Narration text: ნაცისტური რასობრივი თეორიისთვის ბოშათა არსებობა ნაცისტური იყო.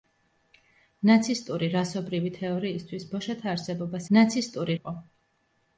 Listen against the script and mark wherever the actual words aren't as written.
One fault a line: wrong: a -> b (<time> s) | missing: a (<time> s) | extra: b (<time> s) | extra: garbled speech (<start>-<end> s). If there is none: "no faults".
no faults